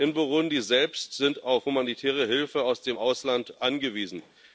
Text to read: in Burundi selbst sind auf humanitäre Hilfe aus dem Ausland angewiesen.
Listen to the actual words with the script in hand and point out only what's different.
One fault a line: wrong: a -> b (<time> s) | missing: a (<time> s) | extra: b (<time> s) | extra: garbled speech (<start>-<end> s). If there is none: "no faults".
no faults